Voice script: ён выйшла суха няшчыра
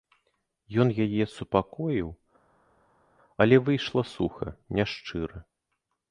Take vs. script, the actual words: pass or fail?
fail